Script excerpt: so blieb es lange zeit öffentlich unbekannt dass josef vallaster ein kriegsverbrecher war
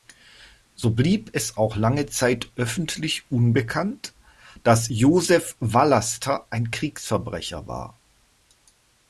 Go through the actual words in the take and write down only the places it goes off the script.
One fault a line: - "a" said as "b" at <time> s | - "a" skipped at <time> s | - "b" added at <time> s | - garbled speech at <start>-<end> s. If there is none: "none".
- "auch" added at 1.6 s